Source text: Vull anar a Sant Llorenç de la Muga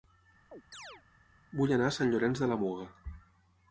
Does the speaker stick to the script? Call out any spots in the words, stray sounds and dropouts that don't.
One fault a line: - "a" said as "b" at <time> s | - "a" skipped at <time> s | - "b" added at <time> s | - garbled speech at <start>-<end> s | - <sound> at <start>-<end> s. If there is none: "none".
- chirp at 0.5-1.0 s